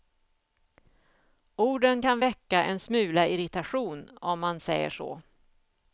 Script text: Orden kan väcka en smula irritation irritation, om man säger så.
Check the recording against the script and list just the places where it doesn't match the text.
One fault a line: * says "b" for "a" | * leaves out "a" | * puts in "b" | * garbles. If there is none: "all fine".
* leaves out "irritation"